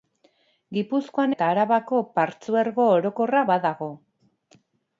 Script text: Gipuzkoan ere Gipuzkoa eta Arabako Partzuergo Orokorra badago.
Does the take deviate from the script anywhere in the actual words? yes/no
yes